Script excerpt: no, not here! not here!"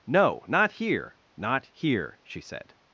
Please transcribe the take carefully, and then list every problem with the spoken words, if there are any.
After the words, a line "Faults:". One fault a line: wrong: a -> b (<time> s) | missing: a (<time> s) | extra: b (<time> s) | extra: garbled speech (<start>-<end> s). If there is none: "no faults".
no, not here! not here!" she said
Faults:
extra: she said (2.2 s)